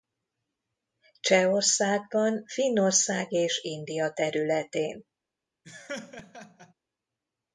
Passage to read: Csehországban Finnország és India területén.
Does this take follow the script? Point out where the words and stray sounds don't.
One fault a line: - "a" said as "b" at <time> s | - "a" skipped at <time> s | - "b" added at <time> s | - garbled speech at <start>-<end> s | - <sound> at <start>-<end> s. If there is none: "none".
- laugh at 5.6-6.7 s